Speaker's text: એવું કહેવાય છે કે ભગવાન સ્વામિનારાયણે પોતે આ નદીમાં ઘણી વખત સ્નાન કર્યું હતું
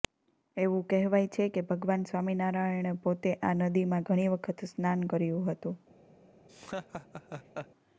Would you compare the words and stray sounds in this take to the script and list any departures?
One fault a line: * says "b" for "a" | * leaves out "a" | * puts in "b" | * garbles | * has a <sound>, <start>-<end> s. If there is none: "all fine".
* has a laugh, 6.5-7.7 s